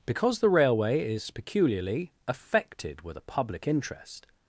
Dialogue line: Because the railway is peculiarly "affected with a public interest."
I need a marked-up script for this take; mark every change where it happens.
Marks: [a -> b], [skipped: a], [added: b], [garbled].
Because the railway is peculiarly "affected with a public interest."